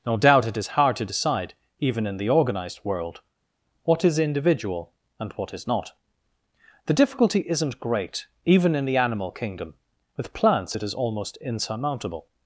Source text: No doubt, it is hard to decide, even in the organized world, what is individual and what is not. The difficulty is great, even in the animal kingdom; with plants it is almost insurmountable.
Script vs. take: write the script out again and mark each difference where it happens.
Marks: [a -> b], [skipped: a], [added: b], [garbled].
No doubt, it is hard to decide, even in the organized world, what is individual and what is not. The difficulty [is -> isn't] great, even in the animal kingdom; with plants it is almost insurmountable.